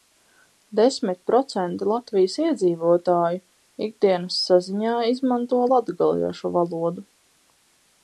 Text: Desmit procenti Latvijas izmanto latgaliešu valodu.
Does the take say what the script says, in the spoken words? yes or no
no